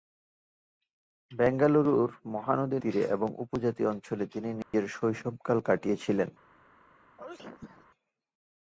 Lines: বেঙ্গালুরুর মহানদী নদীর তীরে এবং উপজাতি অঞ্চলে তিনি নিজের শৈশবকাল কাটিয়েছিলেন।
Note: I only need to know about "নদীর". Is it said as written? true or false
false